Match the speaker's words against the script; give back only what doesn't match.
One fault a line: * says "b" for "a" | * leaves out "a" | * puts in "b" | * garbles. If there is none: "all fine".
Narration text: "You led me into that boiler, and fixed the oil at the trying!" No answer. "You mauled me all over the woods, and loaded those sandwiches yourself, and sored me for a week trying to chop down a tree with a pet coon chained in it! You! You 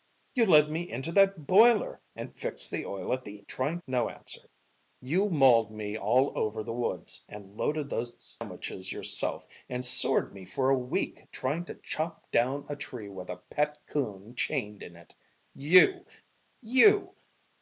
all fine